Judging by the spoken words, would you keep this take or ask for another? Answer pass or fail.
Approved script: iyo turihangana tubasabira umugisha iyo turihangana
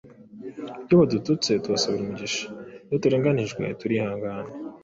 fail